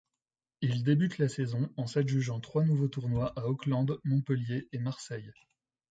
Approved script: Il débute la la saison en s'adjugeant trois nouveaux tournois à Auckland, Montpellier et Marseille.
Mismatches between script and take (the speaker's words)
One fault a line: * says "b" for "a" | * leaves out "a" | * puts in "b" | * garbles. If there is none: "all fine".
* leaves out "la"